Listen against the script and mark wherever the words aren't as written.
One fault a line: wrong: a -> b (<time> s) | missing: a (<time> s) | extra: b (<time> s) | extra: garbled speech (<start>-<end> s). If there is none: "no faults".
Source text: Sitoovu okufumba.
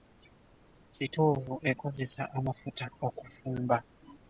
extra: ekozesa amafuta (1.7 s)